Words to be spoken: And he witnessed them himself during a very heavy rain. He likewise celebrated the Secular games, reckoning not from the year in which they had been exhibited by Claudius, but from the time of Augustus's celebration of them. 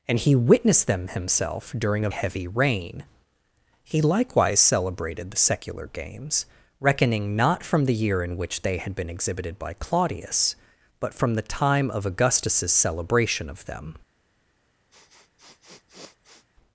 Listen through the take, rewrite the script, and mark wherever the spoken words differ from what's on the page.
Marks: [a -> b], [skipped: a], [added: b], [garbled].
And he witnessed them himself during a [skipped: very] heavy rain. He likewise celebrated the Secular games, reckoning not from the year in which they had been exhibited by Claudius, but from the time of Augustus's celebration of them.